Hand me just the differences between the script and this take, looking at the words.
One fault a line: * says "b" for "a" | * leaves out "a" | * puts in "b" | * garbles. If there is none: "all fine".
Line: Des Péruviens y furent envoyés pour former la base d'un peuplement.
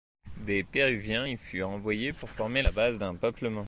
all fine